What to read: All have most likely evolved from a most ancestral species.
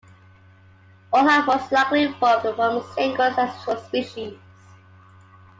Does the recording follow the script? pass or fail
fail